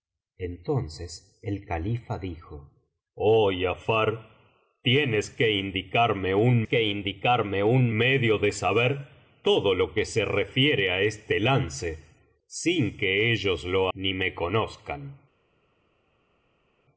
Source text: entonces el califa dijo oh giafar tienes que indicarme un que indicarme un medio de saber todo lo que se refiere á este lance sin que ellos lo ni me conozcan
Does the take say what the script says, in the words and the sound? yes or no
yes